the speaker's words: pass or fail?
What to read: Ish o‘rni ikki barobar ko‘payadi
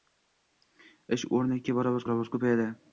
fail